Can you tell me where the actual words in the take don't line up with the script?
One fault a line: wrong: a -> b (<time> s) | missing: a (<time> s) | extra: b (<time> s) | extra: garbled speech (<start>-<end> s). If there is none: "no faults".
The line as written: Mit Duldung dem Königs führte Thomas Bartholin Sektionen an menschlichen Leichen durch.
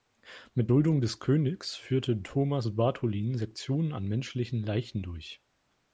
wrong: dem -> des (1.0 s)